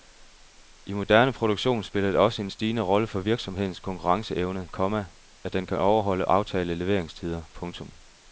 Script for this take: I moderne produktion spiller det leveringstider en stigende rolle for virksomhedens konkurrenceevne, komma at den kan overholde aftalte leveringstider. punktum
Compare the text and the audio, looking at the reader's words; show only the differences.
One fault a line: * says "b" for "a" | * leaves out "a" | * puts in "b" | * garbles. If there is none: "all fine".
* says "også" for "leveringstider"